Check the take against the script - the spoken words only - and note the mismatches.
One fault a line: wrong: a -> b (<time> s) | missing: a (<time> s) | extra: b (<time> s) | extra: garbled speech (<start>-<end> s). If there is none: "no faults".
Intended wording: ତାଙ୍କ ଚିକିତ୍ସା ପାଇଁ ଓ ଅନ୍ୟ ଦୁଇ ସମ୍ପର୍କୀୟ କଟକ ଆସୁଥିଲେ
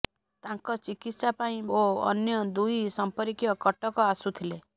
no faults